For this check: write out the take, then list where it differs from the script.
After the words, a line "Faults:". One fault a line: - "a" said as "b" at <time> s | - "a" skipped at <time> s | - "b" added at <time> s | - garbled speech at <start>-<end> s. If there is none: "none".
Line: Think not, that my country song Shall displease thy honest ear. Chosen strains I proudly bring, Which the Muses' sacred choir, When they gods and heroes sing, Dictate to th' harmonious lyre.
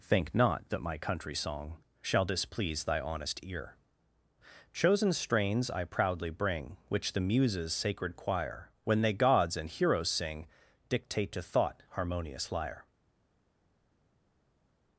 Think not, that my country song Shall displease thy honest ear. Chosen strains I proudly bring, Which the Muses' sacred choir, When they gods and heroes sing, Dictate to thought' harmonious lyre.
Faults:
- "th" said as "thought" at 11.4 s